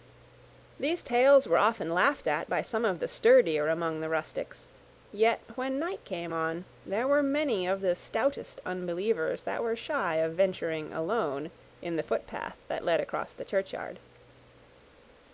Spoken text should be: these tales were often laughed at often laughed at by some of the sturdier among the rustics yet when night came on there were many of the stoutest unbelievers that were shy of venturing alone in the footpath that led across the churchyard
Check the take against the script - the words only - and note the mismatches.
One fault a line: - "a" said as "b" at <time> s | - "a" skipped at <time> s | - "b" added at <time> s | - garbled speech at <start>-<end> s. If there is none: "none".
- "often laughed at" skipped at 2.5 s